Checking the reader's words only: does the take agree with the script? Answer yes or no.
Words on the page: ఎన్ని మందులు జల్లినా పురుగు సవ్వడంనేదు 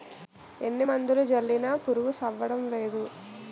yes